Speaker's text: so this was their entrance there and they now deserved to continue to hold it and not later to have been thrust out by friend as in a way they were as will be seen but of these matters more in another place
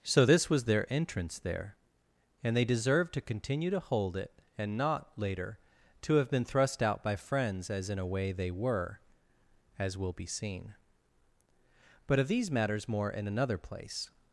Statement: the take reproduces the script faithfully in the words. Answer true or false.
false